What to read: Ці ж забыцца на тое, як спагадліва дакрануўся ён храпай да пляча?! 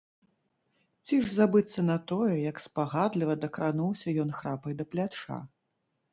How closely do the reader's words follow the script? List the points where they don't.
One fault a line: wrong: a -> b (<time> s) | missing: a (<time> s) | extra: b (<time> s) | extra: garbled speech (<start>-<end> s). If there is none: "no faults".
no faults